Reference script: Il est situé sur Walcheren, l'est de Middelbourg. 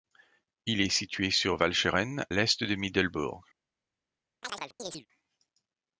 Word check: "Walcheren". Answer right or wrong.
right